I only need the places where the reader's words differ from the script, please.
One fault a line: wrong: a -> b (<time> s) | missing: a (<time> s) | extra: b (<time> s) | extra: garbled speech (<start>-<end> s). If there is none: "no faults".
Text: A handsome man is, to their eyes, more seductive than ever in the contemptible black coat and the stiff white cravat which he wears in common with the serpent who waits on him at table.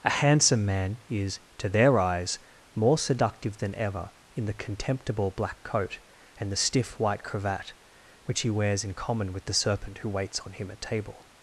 no faults